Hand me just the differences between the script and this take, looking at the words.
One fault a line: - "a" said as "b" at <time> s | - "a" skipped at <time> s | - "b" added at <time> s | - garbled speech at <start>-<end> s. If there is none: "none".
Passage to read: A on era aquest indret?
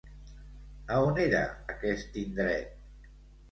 none